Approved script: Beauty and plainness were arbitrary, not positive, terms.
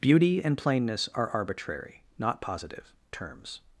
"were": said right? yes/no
no